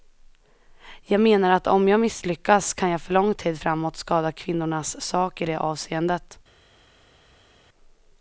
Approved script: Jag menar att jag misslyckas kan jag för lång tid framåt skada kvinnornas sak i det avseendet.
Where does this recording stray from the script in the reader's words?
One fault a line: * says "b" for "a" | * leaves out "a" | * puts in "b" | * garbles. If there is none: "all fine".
* puts in "om"